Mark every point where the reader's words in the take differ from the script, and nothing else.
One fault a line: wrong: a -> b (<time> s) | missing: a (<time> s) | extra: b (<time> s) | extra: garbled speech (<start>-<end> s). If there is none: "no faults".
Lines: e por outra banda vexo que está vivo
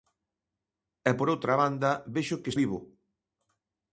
missing: está (2.5 s)